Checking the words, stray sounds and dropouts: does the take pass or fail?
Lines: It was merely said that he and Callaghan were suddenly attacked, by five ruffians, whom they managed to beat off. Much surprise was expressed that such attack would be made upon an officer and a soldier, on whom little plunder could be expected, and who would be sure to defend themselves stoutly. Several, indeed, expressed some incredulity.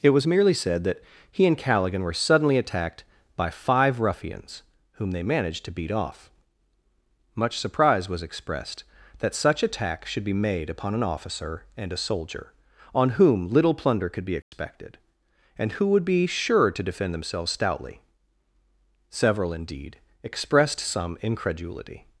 fail